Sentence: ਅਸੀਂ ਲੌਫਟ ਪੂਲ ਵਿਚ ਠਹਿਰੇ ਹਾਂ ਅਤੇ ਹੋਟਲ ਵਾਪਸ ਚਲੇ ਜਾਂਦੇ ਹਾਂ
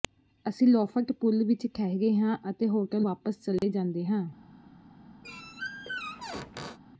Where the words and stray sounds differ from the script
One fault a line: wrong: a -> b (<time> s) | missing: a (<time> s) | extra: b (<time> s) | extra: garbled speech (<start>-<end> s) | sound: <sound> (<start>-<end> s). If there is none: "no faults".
sound: dropout (3.6-3.6 s)
sound: squeak (5.2-6.8 s)